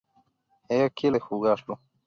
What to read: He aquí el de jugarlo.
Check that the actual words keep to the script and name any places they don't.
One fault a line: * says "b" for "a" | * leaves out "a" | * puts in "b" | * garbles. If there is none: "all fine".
all fine